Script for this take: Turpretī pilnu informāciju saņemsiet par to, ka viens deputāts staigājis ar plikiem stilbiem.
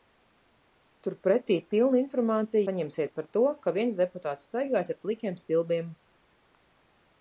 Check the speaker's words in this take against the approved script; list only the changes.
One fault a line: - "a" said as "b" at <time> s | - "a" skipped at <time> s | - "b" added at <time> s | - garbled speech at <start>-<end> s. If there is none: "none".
none